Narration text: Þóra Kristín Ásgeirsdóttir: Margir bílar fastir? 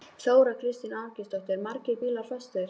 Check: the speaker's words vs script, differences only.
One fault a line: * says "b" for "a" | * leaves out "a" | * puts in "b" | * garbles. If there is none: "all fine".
all fine